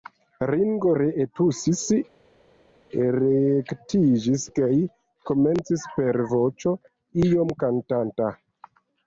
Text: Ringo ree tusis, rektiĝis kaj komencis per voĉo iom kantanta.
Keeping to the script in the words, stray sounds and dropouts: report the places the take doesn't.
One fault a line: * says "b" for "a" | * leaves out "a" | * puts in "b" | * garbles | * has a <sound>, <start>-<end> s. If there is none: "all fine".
all fine